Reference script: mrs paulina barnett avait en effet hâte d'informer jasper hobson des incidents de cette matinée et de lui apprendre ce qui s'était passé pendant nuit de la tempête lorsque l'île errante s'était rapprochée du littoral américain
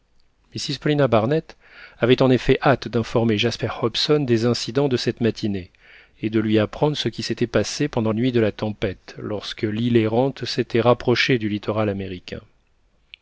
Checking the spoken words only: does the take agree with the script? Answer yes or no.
yes